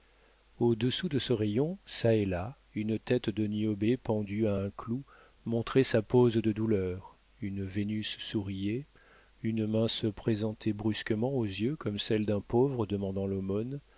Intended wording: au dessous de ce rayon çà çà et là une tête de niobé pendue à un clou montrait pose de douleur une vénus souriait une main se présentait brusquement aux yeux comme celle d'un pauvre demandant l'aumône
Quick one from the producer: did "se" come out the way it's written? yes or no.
yes